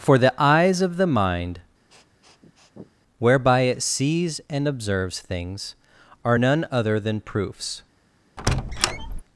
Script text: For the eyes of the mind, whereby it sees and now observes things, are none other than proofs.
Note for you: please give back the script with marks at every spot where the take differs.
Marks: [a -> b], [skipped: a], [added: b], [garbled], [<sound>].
For the eyes of the mind, [sniff] whereby it sees and [skipped: now] observes things, are none other than proofs. [squeak]